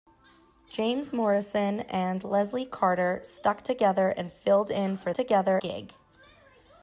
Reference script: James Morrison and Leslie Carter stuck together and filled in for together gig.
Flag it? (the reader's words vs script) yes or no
no